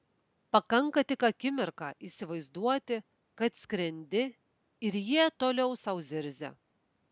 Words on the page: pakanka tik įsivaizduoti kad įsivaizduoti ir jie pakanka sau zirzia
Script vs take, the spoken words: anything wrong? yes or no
yes